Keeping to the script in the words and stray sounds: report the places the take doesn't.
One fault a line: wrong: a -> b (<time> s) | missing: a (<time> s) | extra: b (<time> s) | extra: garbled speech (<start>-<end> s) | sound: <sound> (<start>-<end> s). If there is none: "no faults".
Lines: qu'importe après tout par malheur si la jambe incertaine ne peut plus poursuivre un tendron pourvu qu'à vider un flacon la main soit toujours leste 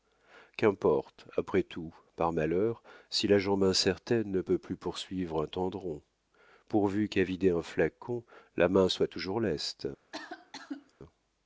sound: cough (10.1-10.9 s)